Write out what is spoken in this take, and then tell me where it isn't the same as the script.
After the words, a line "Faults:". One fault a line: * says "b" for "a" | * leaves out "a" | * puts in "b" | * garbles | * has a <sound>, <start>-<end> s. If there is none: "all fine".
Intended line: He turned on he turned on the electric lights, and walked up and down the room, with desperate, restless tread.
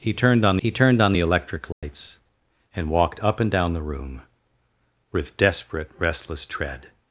He turned on he turned on the electric lights, and walked up and down the room, with desperate, restless tread.
Faults:
* has a dropout, 1.7-1.8 s